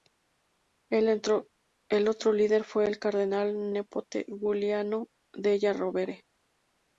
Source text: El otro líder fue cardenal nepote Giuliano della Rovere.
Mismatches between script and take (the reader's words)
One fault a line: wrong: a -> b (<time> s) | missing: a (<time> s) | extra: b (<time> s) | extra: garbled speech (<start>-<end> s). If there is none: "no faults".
extra: el (2.9 s)